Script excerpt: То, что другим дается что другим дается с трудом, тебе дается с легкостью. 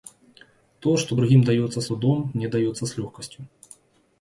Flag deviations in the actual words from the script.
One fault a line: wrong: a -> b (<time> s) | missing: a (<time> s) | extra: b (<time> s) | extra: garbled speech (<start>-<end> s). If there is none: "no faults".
missing: что другим дается (1.8 s)
wrong: тебе -> мне (2.3 s)